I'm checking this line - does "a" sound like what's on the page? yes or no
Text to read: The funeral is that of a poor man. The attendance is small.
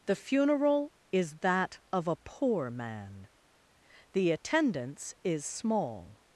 yes